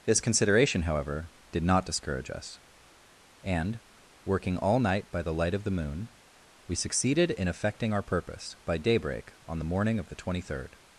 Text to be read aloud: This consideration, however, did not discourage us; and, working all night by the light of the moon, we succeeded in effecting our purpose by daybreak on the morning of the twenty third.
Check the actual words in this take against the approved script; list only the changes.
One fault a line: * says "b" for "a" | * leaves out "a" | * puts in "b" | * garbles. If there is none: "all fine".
all fine